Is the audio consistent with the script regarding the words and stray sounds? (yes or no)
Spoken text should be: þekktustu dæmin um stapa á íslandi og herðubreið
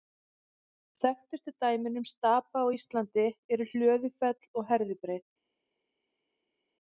no